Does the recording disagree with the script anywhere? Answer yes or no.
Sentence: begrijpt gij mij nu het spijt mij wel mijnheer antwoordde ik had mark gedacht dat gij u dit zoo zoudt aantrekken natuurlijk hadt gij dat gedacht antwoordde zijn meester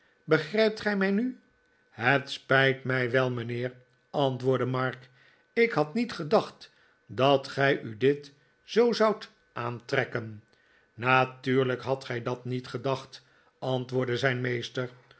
yes